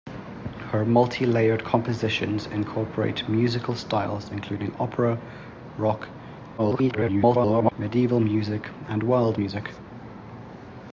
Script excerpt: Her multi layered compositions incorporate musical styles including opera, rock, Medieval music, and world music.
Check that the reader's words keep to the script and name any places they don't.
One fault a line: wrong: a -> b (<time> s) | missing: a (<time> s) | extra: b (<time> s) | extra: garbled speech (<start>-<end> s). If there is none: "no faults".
extra: garbled speech (6.6-7.7 s)